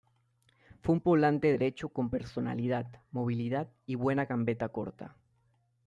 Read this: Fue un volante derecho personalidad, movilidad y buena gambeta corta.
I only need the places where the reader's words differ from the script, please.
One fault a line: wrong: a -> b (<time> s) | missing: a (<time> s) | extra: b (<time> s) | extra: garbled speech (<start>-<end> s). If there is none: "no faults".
extra: con (1.9 s)